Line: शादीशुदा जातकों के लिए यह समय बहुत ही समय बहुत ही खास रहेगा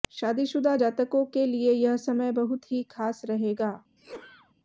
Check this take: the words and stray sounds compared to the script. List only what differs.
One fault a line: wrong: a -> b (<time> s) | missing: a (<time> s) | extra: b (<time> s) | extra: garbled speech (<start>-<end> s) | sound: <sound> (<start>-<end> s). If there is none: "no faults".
missing: समय बहुत ही (2.8 s)
sound: sneeze (4.0-4.5 s)